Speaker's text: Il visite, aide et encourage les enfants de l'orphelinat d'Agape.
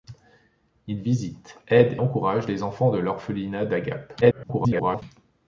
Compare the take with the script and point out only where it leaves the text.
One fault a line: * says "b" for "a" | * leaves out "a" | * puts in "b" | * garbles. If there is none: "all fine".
* leaves out "et"
* garbles